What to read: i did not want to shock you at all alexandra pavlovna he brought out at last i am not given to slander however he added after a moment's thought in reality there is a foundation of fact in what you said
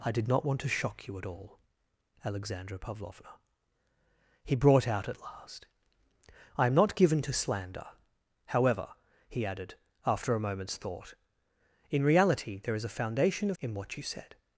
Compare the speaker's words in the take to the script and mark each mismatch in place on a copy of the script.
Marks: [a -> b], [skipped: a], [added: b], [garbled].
i did not want to shock you at all alexandra pavlovna he brought out at last i am not given to slander however he added after a moment's thought in reality there is a foundation of [skipped: fact] in what you said